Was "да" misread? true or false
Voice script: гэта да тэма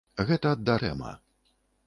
false